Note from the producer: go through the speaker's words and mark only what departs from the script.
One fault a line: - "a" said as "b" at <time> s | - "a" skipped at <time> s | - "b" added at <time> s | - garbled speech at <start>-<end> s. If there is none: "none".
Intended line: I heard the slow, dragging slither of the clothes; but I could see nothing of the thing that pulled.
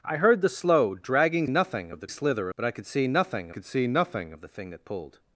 - "slither" said as "nothing" at 1.5 s
- "clothes" said as "slither" at 2.1 s
- "could see nothing" added at 3.5 s